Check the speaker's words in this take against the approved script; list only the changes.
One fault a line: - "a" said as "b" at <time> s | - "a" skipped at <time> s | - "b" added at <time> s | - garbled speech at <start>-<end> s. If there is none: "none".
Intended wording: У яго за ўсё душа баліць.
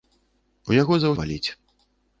- "ўсё душа" skipped at 1.1 s